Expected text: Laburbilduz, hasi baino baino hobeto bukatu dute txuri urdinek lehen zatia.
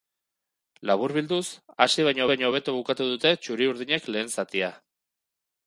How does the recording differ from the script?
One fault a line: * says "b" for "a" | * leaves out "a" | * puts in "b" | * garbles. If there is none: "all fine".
all fine